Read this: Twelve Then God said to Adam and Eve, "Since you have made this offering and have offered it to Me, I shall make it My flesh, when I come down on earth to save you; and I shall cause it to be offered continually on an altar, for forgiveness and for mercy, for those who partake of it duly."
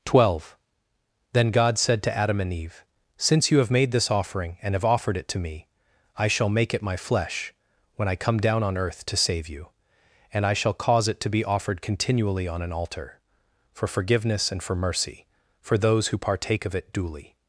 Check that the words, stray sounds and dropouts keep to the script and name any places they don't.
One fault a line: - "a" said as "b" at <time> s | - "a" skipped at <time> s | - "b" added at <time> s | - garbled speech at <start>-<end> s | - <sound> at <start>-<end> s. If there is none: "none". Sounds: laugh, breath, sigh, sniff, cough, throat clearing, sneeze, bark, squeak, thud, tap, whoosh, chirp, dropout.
none